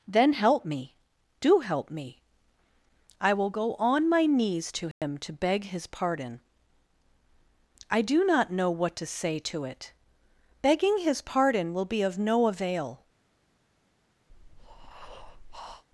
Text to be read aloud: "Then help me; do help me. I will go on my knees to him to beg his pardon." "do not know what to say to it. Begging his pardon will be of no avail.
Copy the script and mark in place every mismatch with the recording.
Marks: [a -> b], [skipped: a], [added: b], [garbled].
"Then help me; do help me. I will go on my knees to him to beg his pardon." [added: I] "do not know what to say to it. Begging his pardon will be of no avail.